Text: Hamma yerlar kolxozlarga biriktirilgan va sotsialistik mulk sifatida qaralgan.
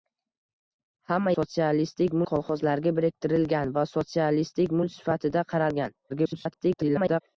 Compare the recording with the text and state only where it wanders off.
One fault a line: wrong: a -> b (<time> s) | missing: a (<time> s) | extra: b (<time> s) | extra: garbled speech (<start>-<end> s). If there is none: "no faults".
wrong: yerlar -> sotsialistik (1.4 s)
extra: garbled speech (6.1-7.2 s)